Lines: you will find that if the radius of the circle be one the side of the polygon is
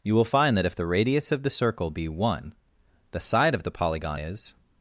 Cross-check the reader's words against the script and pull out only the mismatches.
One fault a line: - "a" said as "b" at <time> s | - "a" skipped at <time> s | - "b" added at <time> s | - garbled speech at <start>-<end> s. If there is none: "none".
none